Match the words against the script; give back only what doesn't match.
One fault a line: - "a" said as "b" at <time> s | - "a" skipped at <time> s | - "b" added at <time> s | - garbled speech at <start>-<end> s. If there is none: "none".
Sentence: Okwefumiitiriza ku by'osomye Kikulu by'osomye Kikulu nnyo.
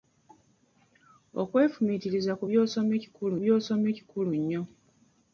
none